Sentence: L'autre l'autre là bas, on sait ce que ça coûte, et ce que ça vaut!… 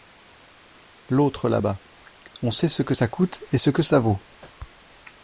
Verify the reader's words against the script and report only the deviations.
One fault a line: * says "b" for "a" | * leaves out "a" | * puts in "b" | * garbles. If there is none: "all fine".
* leaves out "l'autre"